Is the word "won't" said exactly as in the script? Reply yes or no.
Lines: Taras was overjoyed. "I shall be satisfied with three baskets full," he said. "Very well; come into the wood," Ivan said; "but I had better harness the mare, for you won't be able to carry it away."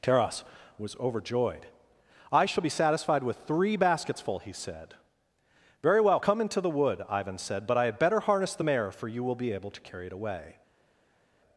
no